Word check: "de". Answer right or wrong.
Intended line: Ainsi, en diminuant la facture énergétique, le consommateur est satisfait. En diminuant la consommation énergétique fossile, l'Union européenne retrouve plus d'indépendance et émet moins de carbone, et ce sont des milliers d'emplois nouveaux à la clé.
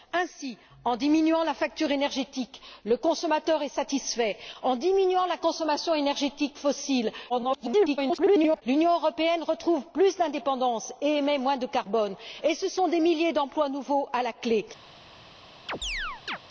right